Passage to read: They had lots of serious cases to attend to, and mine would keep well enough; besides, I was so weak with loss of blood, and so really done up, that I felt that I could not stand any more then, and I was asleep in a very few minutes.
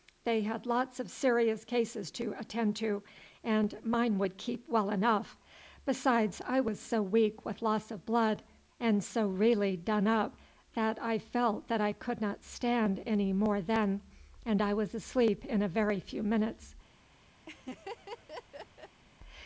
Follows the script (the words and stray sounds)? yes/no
no